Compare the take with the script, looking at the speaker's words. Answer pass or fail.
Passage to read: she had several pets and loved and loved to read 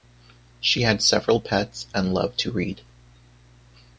fail